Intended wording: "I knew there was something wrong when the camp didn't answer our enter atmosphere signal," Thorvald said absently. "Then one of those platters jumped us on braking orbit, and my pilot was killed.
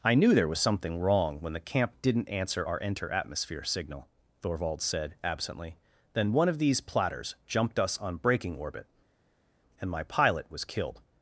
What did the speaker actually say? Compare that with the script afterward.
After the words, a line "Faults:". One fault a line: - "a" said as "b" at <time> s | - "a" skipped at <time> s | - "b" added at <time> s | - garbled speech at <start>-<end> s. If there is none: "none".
"I knew there was something wrong when the camp didn't answer our enter atmosphere signal," Thorvald said absently. "Then one of these platters jumped us on braking orbit, and my pilot was killed.
Faults:
- "those" said as "these" at 6.6 s